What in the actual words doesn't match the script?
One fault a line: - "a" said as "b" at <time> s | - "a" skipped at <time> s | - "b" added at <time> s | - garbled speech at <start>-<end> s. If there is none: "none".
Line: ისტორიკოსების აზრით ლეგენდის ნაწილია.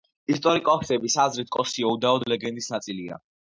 - "კოსიო უდაოდ" added at 1.6 s